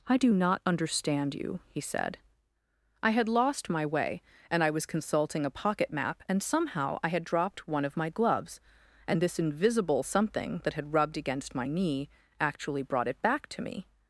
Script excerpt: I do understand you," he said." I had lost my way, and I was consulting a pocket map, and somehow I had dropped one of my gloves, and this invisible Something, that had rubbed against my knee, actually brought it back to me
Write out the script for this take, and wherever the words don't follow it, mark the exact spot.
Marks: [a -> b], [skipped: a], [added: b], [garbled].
I do [added: not] understand you," he said." I had lost my way, and I was consulting a pocket map, and somehow I had dropped one of my gloves, and this invisible Something, that had rubbed against my knee, actually brought it back to me